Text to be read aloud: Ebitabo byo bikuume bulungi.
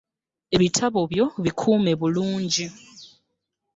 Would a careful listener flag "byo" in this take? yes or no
no